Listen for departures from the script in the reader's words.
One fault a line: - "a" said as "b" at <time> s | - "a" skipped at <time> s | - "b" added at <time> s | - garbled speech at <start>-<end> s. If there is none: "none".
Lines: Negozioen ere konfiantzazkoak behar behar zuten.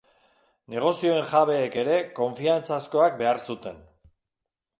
- "jabeek" added at 1.3 s
- "behar" skipped at 3.4 s